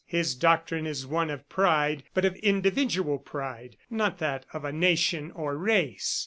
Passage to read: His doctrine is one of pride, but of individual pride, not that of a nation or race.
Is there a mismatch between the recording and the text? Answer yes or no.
no